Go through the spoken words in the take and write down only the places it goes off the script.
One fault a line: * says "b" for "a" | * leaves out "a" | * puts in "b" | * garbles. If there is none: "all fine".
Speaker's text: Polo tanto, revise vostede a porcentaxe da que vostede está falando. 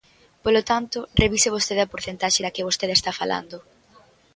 all fine